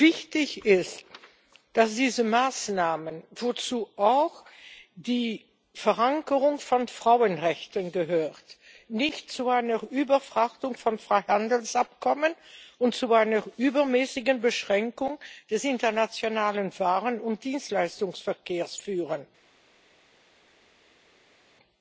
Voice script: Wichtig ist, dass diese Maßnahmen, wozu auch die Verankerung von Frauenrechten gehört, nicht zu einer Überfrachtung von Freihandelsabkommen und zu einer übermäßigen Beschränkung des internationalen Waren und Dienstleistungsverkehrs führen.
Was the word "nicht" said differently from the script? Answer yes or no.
no